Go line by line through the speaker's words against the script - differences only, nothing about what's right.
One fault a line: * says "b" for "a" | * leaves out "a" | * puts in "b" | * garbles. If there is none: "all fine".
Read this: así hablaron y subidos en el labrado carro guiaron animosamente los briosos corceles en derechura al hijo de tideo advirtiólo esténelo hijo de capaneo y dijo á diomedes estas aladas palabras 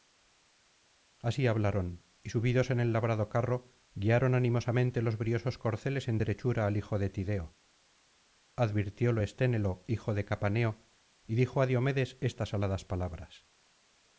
all fine